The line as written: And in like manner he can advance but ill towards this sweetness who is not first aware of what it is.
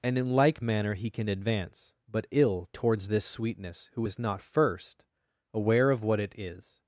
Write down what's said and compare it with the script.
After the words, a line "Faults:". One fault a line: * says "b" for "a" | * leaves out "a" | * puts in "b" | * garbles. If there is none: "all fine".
And in like manner he can advance but ill towards this sweetness who is not first aware of what it is.
Faults:
all fine